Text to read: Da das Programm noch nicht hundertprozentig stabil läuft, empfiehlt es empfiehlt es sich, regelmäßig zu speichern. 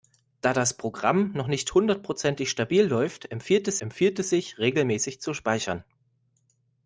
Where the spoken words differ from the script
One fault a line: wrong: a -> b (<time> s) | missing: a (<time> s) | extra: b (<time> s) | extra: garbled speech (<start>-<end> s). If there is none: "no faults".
no faults